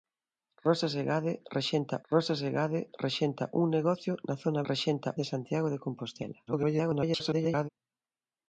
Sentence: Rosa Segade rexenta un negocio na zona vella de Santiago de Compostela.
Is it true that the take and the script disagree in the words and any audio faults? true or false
true